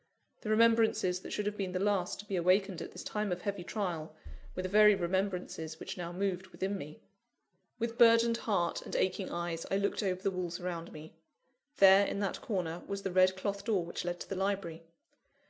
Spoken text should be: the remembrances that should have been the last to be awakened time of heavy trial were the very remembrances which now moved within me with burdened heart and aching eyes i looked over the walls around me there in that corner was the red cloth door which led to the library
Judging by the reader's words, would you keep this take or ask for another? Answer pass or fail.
fail